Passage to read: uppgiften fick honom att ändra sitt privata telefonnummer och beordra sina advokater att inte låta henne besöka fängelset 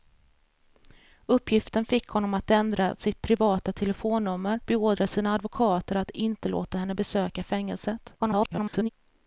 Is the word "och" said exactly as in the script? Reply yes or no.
no